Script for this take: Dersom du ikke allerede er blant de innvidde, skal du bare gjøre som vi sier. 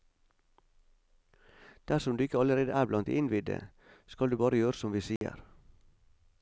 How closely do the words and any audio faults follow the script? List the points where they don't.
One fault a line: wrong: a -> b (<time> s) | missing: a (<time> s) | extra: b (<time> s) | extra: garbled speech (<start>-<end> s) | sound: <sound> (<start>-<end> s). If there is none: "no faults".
sound: dropout (5.2-5.2 s)